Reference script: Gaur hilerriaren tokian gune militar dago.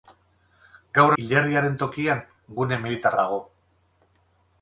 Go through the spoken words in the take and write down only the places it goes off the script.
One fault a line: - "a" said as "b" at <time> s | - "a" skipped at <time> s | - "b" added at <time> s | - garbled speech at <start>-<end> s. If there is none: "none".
none